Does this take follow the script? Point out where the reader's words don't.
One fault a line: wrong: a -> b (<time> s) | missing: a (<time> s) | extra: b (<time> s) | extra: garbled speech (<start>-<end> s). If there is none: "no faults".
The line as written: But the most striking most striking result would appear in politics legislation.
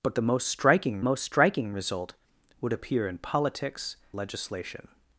no faults